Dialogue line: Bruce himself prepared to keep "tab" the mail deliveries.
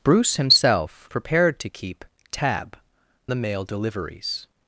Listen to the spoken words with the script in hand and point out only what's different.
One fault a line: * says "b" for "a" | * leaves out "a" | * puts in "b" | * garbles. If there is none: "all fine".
all fine